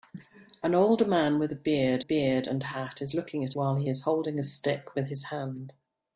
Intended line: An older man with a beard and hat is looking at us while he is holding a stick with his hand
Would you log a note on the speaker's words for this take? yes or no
yes